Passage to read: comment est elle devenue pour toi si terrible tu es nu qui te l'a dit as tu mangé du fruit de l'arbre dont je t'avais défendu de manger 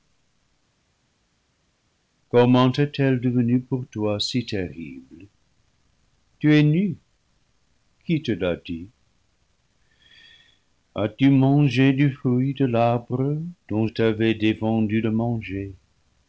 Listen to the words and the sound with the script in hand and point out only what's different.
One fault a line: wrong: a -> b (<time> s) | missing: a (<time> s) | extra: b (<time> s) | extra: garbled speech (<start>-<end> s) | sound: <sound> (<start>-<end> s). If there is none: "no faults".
missing: je (13.9 s)